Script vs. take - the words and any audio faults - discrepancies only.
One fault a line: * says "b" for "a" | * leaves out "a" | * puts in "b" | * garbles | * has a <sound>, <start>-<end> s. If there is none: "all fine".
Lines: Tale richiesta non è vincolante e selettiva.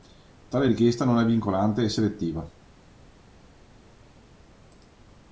all fine